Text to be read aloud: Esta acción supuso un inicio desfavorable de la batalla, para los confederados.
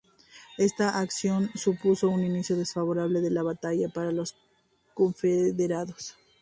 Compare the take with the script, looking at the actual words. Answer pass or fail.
pass